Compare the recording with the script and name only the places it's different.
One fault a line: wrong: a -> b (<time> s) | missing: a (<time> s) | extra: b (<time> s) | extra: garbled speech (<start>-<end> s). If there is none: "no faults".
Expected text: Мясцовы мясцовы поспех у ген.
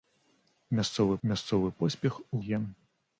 no faults